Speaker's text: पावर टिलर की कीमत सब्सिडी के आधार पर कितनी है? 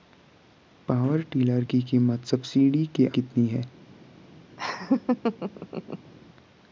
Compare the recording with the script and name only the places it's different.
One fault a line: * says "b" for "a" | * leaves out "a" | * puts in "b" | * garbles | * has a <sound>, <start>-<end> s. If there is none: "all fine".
* leaves out "आधार पर"
* has a laugh, 4.6-6.1 s